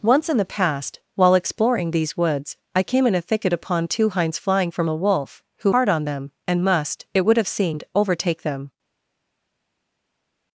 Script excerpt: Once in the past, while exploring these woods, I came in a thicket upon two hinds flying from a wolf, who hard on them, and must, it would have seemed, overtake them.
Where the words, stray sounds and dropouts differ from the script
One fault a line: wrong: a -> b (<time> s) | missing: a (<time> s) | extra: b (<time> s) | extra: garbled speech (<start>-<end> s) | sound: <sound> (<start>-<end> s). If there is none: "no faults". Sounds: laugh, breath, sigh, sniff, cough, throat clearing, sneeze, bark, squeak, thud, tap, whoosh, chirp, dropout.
no faults